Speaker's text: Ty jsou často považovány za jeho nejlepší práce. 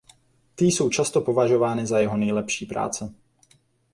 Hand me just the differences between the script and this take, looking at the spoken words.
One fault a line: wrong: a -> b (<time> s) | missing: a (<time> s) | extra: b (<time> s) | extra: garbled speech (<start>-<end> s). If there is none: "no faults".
no faults